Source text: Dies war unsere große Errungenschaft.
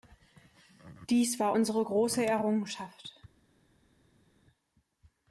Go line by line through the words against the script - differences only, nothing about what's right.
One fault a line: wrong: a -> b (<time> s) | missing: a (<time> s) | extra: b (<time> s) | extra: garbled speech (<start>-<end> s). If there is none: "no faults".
no faults